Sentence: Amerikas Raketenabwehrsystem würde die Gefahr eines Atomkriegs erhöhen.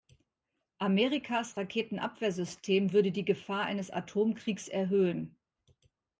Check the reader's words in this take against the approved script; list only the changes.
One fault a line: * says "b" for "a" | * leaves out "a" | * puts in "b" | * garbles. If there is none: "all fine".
all fine